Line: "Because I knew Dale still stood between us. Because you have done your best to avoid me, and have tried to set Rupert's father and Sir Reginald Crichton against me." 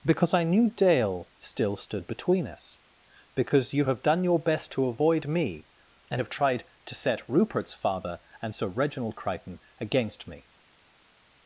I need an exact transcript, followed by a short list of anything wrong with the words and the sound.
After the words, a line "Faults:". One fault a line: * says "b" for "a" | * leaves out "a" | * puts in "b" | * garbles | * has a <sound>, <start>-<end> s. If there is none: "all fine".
"Because I knew Dale still stood between us. Because you have done your best to avoid me, and have tried to set Rupert's father and Sir Reginald Crichton against me."
Faults:
all fine